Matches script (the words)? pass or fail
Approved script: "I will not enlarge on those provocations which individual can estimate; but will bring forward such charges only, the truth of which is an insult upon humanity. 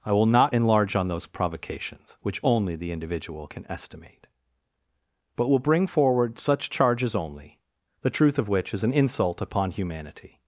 fail